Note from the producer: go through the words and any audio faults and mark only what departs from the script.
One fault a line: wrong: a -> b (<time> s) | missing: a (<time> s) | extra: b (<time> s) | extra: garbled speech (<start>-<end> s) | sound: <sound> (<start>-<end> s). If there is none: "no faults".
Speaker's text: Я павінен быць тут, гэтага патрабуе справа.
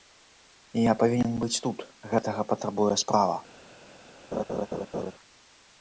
sound: laugh (4.3-5.1 s)